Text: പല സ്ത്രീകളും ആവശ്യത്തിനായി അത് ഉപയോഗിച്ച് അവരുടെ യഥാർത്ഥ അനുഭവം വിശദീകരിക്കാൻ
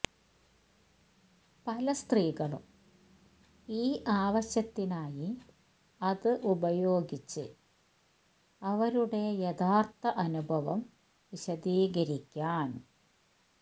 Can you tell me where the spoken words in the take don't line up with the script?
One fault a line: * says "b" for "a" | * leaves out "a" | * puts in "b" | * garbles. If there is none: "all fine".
* puts in "ഈ"